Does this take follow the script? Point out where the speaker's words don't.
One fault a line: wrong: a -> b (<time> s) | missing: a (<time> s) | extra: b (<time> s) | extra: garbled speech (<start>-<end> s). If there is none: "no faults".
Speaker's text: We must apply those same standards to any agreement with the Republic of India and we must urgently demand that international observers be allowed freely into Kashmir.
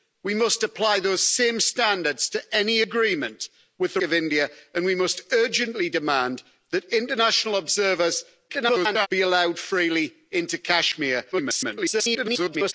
missing: Republic (4.0 s)
extra: garbled speech (8.5-9.1 s)
extra: garbled speech (11.3-12.7 s)